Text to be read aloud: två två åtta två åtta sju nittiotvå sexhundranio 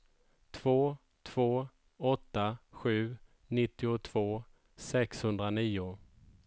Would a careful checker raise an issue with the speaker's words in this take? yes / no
yes